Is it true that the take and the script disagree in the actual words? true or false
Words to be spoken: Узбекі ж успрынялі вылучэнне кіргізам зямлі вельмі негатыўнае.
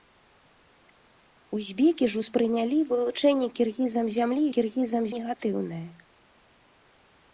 true